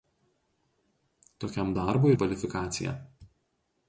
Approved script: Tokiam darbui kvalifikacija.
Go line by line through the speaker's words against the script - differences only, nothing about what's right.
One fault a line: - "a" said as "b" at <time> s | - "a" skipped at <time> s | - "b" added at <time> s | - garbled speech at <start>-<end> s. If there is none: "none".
none